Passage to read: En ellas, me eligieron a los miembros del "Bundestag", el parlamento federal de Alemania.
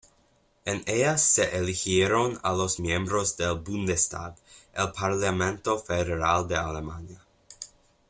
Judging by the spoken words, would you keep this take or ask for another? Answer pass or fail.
fail